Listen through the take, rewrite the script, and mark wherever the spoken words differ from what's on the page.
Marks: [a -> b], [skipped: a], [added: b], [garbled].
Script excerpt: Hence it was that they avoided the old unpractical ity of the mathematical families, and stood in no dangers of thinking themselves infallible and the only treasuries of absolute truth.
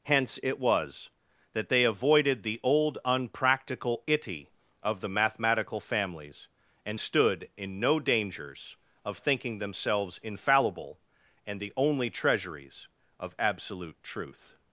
Hence it was that they avoided the old unpractical ity of the mathematical families, and stood in no dangers of thinking themselves infallible and the only treasuries of absolute truth.